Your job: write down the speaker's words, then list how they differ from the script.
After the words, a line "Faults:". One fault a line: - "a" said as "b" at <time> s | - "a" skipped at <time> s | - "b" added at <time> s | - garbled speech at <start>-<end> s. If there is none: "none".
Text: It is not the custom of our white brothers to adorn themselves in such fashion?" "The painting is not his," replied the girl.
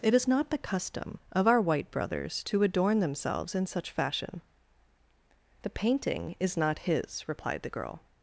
It is not the custom of our white brothers to adorn themselves in such fashion?" "The painting is not his," replied the girl.
Faults:
none